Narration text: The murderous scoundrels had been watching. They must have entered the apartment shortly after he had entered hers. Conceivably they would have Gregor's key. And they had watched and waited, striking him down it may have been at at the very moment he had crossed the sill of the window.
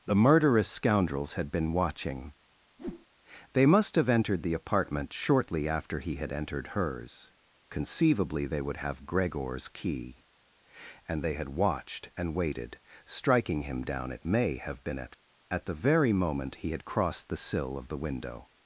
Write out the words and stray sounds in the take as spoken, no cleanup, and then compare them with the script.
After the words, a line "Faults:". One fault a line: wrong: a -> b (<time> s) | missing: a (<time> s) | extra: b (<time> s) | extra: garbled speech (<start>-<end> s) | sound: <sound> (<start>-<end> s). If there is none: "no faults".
The murderous scoundrels had been watching. They must have entered the apartment shortly after he had entered hers. Conceivably they would have Gregor's key. And they had watched and waited, striking him down it may have been at at the very moment he had crossed the sill of the window.
Faults:
sound: whoosh (2.8-3.1 s)